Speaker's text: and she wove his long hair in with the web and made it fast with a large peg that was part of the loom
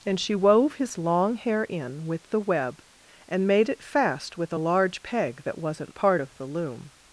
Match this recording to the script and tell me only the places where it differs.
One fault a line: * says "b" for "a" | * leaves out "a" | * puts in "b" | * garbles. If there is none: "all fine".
* says "wasn't" for "was"